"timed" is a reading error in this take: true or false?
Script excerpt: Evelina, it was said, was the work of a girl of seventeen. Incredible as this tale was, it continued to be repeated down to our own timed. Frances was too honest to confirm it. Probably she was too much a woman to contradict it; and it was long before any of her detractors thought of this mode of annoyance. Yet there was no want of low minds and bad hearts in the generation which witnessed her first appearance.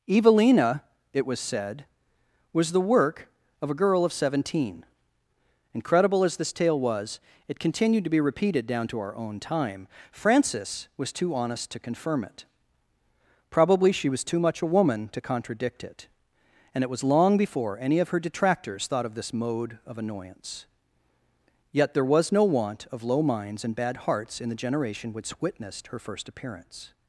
true